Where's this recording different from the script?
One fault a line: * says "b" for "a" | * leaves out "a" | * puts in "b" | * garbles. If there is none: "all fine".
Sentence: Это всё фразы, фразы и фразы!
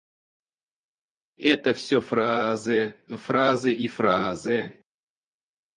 all fine